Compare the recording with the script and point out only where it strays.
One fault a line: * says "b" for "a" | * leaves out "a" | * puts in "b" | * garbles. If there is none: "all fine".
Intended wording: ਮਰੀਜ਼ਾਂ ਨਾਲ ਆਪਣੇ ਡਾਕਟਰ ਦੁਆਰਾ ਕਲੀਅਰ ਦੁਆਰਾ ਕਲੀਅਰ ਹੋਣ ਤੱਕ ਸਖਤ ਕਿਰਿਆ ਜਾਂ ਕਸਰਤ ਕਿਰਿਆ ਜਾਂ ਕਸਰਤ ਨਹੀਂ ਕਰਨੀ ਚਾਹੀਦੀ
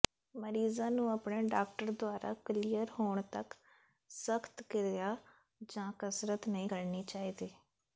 * says "ਨੂੰ" for "ਨਾਲ"
* leaves out "ਦੁਆਰਾ ਕਲੀਅਰ"
* leaves out "ਕਿਰਿਆ ਜਾਂ ਕਸਰਤ"